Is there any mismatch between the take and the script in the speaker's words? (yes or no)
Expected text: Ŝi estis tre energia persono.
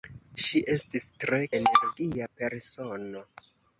no